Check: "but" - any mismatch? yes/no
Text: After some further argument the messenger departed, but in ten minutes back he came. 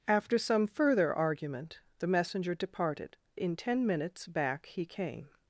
yes